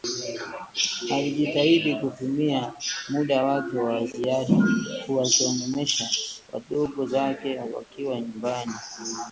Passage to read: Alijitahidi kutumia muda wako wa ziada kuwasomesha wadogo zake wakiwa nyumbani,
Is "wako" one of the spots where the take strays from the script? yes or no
yes